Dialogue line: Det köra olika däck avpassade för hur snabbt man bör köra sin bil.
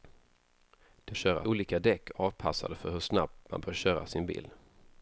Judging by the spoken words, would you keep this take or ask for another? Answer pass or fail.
pass